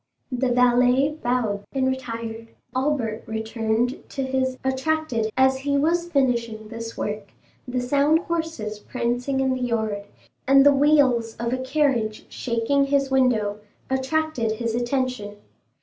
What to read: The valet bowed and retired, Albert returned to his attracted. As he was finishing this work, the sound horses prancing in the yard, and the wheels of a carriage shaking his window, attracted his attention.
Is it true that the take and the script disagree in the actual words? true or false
false